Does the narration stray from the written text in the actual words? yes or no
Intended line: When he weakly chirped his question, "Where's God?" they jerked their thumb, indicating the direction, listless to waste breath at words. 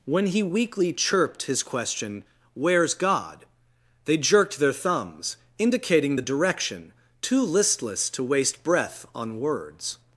yes